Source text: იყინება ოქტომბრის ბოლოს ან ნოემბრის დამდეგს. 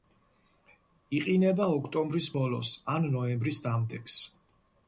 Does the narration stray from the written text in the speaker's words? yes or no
no